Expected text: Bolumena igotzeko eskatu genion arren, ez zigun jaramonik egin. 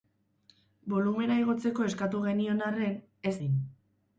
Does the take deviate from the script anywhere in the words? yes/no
yes